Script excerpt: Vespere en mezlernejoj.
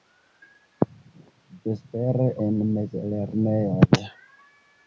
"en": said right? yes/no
yes